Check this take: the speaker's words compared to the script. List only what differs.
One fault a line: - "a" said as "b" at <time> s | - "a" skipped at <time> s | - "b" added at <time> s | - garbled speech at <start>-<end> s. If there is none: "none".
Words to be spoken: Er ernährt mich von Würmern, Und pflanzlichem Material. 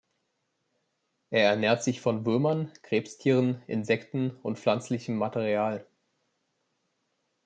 - "mich" said as "sich" at 1.8 s
- "Krebstieren Insekten" added at 2.8 s